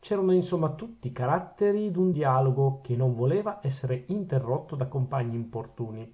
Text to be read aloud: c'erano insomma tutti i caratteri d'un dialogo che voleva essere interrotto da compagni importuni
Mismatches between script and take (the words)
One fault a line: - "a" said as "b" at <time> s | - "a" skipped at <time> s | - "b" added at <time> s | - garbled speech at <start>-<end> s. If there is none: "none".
- "non" added at 2.9 s